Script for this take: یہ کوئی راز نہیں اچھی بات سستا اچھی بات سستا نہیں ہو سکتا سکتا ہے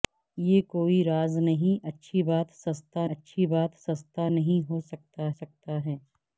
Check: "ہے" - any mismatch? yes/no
no